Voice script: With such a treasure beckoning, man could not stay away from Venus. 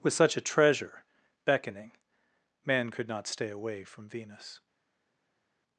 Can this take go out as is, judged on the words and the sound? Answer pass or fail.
pass